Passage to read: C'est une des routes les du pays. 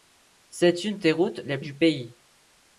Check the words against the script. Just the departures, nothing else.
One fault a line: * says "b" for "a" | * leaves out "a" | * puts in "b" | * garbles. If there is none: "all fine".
all fine